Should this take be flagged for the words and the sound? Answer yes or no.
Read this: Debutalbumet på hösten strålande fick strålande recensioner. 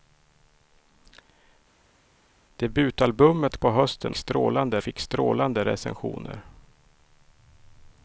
no